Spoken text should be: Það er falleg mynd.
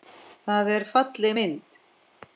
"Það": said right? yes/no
yes